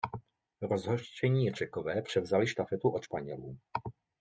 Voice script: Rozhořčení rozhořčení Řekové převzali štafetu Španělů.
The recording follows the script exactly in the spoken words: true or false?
false